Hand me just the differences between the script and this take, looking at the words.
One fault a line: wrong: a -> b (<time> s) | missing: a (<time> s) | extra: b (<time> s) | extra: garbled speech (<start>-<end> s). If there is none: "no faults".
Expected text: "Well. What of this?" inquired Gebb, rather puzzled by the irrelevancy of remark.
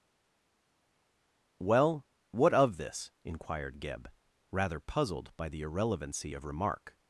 no faults